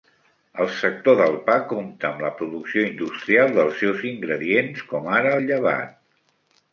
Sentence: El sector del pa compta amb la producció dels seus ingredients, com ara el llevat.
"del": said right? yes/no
yes